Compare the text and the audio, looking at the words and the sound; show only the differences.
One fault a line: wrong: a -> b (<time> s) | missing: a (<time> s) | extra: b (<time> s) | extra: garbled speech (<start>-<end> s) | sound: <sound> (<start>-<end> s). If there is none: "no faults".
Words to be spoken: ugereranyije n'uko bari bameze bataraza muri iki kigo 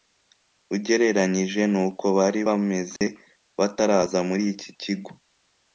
sound: dropout (3.0-3.0 s)